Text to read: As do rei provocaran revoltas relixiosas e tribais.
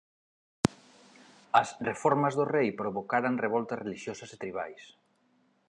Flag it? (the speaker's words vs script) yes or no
yes